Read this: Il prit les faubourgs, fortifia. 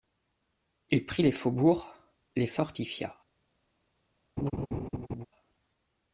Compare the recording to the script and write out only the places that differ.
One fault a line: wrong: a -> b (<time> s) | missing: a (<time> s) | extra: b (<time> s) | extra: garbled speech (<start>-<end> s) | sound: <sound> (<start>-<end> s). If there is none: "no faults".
extra: les (2.4 s)
sound: laugh (4.4-5.3 s)